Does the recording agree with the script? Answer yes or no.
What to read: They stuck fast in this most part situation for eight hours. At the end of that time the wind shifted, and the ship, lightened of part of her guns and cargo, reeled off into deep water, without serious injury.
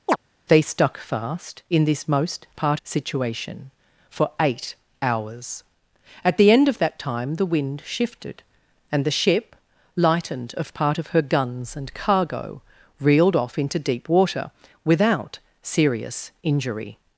yes